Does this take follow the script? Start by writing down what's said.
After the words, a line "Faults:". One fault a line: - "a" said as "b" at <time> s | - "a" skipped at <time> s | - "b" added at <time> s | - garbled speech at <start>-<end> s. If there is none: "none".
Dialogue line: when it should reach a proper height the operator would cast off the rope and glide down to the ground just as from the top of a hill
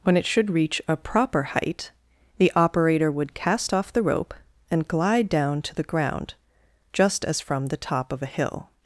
when it should reach a proper height the operator would cast off the rope and glide down to the ground just as from the top of a hill
Faults:
none